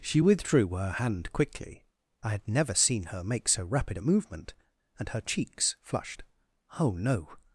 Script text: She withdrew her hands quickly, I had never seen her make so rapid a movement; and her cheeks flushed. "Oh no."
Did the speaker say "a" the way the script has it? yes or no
yes